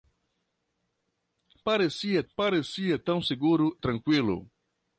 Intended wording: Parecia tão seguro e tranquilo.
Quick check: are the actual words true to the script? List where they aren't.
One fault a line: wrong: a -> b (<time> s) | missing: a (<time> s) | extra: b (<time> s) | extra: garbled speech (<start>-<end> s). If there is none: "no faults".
extra: parecia (2.3 s)
missing: e (3.8 s)